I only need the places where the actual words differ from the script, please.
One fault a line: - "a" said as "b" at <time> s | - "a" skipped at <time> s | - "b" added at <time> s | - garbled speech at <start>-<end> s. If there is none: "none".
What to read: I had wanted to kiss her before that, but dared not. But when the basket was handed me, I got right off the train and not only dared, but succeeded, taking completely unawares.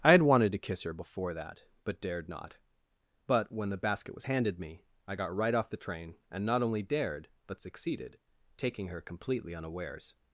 - "her" added at 8.9 s